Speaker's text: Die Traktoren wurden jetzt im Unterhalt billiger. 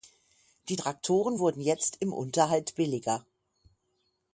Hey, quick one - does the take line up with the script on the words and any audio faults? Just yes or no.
yes